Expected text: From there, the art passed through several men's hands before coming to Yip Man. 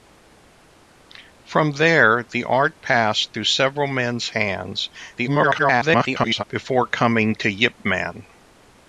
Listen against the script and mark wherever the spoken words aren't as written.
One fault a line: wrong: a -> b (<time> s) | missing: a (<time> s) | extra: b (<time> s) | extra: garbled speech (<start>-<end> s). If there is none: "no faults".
extra: garbled speech (5.2-6.4 s)